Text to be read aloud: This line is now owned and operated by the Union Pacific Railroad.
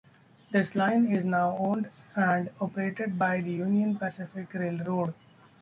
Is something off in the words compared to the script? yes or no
no